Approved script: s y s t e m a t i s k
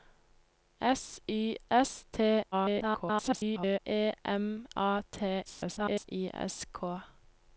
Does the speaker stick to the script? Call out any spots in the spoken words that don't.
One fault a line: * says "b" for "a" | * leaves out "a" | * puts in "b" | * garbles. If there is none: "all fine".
* garbles
* garbles